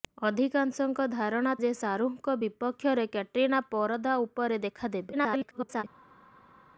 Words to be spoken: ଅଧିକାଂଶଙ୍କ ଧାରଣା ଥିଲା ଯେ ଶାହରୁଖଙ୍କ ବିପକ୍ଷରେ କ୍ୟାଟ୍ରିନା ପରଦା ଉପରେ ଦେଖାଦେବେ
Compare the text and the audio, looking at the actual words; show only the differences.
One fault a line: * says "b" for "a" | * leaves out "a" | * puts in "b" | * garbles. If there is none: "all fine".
* leaves out "ଥିଲା"
* garbles